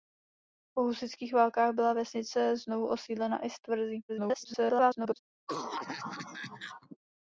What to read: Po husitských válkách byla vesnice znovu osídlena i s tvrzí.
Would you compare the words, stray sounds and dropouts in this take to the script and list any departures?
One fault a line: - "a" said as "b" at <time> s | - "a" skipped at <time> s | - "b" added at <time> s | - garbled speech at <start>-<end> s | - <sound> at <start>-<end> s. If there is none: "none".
- garbled speech at 4.1-5.2 s
- cough at 5.5-7.0 s